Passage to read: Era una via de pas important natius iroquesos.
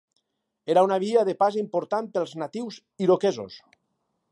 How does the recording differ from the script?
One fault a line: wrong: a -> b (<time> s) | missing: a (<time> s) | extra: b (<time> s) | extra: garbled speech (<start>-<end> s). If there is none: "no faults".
extra: pels (2.2 s)